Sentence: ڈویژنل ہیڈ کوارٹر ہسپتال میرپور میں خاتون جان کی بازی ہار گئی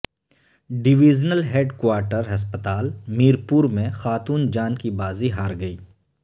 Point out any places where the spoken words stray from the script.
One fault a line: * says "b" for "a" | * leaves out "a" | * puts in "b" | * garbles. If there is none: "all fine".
all fine